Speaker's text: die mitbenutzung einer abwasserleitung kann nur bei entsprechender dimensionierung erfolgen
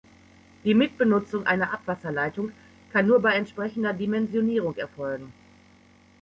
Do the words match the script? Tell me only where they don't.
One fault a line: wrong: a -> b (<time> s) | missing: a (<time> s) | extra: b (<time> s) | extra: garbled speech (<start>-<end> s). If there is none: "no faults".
no faults